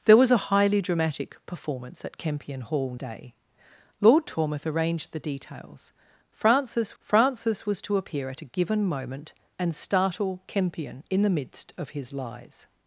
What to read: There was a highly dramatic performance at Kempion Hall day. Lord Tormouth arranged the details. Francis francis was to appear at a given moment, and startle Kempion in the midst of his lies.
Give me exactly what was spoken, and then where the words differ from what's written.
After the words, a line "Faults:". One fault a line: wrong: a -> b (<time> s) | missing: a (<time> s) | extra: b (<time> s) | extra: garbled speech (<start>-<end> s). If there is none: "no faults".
There was a highly dramatic performance at Kempion Hall day. Lord Tormouth arranged the details. Francis francis was to appear at a given moment, and startle Kempion in the midst of his lies.
Faults:
no faults